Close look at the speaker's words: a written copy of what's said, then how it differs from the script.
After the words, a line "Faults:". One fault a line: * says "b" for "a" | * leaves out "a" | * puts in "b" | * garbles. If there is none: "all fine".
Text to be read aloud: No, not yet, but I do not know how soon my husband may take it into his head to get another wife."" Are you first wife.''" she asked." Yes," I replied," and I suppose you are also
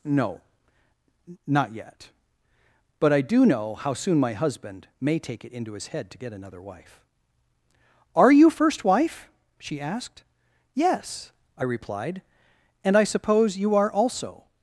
No, not yet, but I do know how soon my husband may take it into his head to get another wife."" Are you first wife.''" she asked." Yes," I replied," and I suppose you are also
Faults:
* leaves out "not"